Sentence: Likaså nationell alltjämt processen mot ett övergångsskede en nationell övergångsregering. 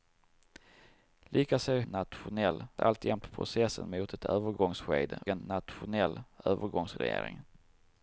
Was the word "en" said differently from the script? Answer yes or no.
no